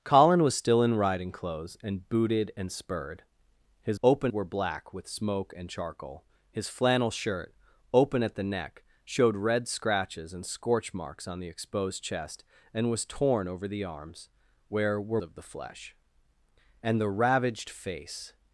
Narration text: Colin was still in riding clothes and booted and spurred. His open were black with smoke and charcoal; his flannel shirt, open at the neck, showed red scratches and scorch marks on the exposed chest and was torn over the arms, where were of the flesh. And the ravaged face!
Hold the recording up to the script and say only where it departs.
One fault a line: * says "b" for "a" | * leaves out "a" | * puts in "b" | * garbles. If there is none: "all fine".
all fine